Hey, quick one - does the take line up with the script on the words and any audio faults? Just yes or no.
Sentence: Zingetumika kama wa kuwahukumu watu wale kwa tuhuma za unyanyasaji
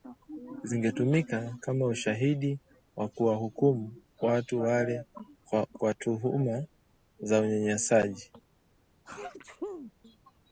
no